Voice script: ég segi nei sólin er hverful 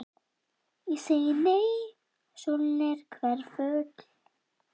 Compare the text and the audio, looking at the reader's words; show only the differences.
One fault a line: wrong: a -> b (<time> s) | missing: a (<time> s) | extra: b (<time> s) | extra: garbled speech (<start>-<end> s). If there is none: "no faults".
no faults